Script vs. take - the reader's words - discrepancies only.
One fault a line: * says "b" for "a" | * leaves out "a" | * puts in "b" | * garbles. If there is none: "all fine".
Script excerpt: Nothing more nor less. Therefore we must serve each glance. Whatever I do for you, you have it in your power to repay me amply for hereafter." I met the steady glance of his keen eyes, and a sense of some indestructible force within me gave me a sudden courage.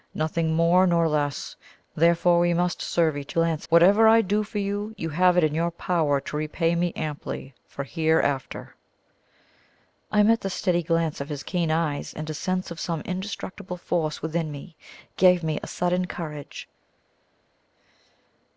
all fine